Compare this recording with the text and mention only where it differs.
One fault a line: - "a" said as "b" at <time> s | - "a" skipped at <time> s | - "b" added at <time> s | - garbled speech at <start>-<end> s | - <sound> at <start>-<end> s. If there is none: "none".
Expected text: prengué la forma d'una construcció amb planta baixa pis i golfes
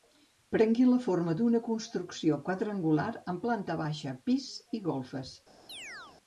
- "quadrangular" added at 2.5 s
- chirp at 5.7-6.2 s